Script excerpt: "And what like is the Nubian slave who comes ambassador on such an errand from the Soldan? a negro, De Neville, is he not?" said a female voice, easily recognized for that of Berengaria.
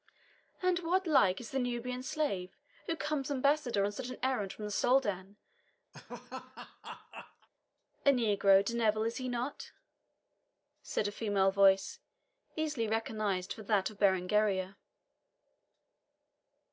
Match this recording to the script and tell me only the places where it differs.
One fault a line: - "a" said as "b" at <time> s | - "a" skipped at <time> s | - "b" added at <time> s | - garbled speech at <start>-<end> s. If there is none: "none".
none